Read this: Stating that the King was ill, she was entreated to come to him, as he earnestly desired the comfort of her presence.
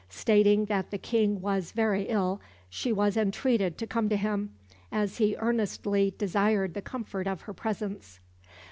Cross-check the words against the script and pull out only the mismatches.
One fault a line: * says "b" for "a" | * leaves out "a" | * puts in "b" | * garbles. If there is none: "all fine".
* puts in "very"